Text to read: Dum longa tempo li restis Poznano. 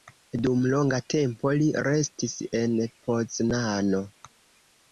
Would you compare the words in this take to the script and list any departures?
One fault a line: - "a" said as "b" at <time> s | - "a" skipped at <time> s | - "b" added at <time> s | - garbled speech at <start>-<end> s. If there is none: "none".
- "en" added at 2.6 s